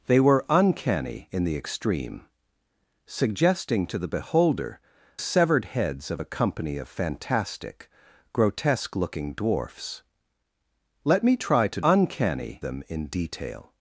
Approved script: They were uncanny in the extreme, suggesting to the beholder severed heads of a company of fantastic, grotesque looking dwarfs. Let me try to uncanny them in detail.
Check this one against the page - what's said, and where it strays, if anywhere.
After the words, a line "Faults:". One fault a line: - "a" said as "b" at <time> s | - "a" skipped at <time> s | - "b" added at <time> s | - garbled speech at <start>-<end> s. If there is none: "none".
They were uncanny in the extreme, suggesting to the beholder severed heads of a company of fantastic, grotesque looking dwarfs. Let me try to uncanny them in detail.
Faults:
none